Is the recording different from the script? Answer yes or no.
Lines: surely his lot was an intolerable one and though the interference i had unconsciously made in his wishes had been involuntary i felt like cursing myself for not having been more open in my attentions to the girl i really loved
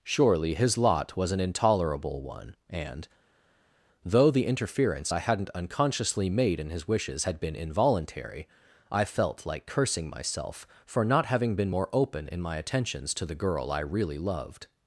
yes